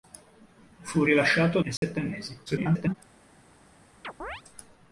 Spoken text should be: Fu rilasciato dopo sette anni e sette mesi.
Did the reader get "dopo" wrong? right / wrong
wrong